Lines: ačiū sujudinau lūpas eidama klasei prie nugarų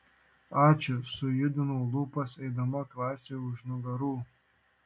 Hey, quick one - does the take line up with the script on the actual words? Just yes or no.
no